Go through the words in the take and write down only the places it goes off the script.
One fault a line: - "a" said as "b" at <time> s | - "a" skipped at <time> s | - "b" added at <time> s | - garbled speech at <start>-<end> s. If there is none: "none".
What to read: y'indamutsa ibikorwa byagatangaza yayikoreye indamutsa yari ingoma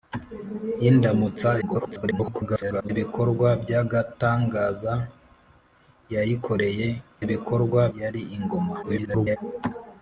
- garbled speech at 1.6-2.9 s
- "indamutsa" said as "ibikorwa" at 7.2 s
- garbled speech at 8.8-9.4 s